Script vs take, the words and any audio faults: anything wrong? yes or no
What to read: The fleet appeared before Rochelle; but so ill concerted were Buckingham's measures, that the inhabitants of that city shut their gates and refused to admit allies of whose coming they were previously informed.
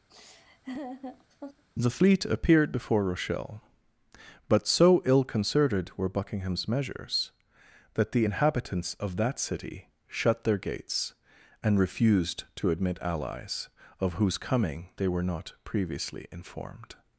yes